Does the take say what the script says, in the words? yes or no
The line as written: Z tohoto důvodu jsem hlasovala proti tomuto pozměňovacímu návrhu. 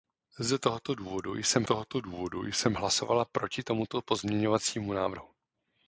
no